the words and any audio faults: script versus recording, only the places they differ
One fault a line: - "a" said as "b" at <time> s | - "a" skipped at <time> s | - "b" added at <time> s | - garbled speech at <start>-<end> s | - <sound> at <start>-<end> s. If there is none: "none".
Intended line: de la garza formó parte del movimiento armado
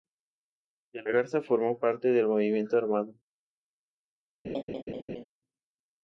- laugh at 4.4-5.2 s